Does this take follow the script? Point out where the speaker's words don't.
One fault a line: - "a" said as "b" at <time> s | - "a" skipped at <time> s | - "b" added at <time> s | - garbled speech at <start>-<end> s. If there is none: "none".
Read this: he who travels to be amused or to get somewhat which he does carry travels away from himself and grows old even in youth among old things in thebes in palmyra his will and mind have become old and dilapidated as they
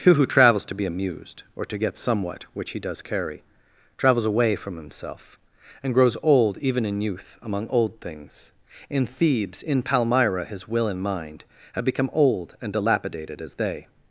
none